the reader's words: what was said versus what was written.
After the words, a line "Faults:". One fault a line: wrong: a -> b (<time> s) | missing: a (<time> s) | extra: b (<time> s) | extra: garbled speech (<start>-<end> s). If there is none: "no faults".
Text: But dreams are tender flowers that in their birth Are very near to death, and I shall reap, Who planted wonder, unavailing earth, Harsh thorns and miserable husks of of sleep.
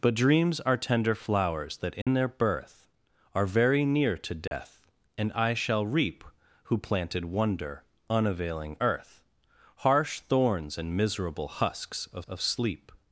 But dreams are tender flowers that in their birth Are very near to death, and I shall reap, Who planted wonder, unavailing earth, Harsh thorns and miserable husks of of sleep.
Faults:
no faults